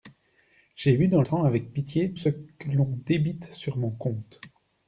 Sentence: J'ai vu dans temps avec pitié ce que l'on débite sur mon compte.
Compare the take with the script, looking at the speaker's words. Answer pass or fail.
pass